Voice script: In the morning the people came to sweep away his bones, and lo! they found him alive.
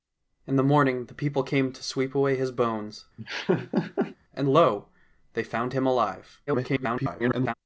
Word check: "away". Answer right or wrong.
right